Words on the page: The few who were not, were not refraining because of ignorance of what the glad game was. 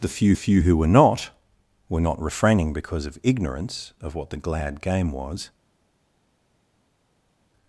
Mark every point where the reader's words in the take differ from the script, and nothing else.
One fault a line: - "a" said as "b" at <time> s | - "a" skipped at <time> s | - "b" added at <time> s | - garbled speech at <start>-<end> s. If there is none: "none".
- "few" added at 0.3 s